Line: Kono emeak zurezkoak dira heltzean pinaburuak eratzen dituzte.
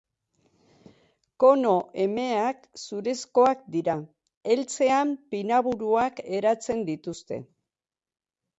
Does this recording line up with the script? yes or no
yes